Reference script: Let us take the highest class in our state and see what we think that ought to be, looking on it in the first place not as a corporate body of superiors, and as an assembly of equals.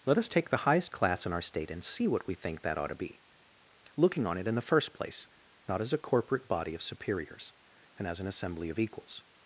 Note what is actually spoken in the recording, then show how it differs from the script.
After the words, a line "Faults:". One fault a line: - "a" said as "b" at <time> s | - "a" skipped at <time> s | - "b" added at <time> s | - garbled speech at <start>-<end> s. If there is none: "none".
Let us take the highest class in our state and see what we think that ought to be, looking on it in the first place not as a corporate body of superiors, and as an assembly of equals.
Faults:
none